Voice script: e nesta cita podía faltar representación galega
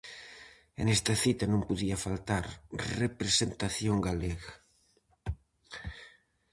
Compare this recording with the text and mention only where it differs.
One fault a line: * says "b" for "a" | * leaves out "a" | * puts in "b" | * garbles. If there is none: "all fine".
* puts in "non"